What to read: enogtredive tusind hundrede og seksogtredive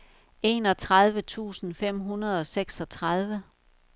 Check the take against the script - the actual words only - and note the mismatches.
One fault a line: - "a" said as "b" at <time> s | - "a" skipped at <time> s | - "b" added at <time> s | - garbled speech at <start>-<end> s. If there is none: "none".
- "fem" added at 1.7 s